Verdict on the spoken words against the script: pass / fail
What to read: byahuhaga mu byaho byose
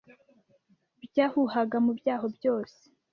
pass